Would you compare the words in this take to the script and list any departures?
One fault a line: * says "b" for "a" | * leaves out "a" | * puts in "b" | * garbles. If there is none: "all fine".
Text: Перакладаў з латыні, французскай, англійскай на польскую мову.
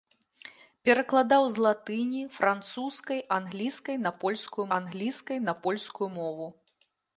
* puts in "англійскай на польскую"